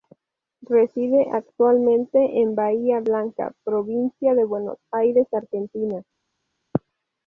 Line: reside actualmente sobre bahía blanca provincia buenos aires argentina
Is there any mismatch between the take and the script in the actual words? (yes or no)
yes